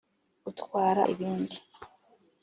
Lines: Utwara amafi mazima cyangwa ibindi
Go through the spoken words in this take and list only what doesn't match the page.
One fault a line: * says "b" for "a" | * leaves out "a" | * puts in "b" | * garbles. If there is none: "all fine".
* leaves out "amafi mazima cyangwa"